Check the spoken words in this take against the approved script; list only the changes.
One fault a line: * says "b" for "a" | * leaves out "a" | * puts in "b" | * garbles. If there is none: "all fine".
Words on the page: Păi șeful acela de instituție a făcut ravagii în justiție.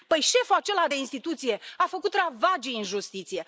all fine